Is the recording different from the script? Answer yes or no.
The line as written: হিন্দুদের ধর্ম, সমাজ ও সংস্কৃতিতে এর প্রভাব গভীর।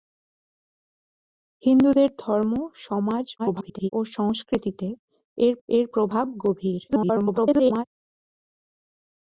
yes